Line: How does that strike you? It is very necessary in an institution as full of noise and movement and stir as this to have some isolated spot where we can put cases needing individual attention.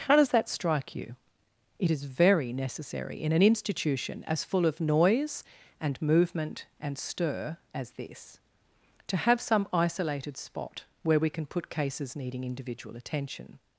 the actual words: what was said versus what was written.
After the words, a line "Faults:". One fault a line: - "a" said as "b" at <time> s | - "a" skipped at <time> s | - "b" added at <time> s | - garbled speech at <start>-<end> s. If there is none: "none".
How does that strike you? It is very necessary in an institution as full of noise and movement and stir as this to have some isolated spot where we can put cases needing individual attention.
Faults:
none